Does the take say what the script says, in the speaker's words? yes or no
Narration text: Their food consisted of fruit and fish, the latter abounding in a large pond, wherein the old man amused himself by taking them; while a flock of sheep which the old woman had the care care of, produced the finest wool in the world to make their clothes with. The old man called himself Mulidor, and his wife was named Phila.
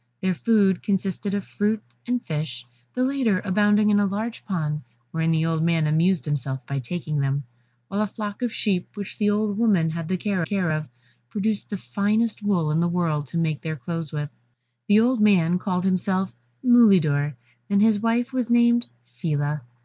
yes